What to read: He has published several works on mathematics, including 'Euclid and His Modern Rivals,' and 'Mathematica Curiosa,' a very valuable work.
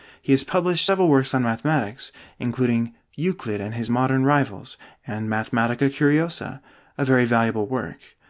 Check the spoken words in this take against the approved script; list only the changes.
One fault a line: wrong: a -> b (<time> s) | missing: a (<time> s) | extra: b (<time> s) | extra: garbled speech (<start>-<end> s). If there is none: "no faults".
no faults